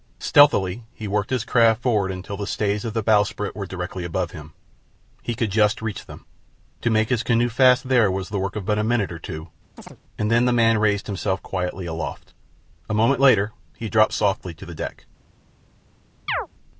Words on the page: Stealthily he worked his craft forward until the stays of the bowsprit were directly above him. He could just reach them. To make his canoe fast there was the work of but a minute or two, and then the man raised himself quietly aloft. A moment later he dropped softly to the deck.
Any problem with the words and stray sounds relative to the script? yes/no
yes